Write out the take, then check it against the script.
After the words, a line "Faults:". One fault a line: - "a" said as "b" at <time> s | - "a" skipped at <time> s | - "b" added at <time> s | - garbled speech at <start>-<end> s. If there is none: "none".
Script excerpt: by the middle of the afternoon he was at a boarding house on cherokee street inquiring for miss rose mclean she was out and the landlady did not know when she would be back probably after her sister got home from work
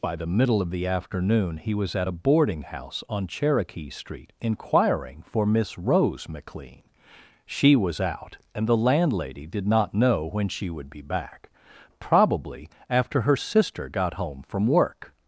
by the middle of the afternoon he was at a boarding house on cherokee street inquiring for miss rose mclean she was out and the landlady did not know when she would be back probably after her sister got home from work
Faults:
none